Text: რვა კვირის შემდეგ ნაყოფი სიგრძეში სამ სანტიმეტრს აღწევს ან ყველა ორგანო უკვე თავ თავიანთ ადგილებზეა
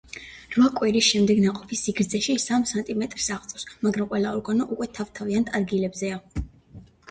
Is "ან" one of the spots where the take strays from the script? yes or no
yes